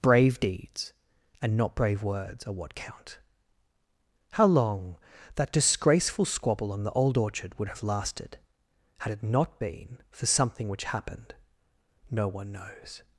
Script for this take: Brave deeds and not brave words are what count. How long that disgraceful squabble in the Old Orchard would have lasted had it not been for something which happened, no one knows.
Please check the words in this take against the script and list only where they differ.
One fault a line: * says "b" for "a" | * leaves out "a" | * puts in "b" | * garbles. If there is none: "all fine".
* says "on" for "in"